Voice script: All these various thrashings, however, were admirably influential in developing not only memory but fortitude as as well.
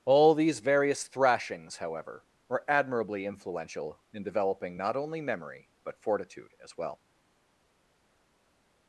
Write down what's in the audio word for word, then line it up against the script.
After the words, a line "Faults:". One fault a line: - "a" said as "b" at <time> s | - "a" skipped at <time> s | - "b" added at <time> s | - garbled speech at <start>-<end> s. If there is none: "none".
All these various thrashings, however, were admirably influential in developing not only memory but fortitude as well.
Faults:
- "as" skipped at 6.8 s